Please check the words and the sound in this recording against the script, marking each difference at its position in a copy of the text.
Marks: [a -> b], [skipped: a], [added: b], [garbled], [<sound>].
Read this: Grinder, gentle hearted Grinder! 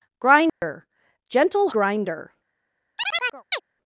Grinder, [dropout] gentle [skipped: hearted] Grinder! [chirp]